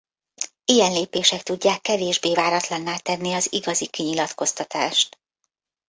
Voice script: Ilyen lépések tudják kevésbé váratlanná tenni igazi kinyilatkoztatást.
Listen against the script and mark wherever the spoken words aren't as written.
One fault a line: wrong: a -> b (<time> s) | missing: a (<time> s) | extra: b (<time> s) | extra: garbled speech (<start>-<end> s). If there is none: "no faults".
extra: az (3.3 s)